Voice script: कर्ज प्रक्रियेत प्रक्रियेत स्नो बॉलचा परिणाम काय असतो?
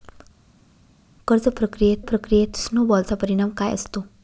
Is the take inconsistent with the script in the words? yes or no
no